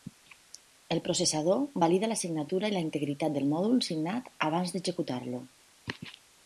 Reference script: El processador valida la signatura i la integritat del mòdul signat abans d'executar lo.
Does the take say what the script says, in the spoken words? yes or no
yes